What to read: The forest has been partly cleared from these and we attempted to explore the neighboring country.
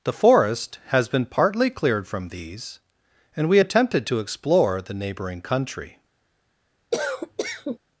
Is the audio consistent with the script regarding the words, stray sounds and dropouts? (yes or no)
no